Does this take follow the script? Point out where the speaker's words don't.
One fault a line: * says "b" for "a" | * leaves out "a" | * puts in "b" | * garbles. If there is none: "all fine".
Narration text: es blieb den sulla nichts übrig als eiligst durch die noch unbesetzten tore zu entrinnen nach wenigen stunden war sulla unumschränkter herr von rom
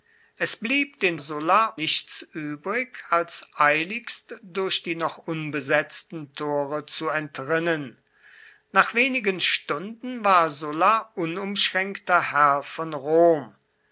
all fine